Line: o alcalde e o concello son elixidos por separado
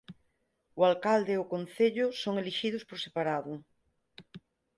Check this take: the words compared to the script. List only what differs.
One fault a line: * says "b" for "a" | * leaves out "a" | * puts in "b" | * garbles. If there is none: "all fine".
all fine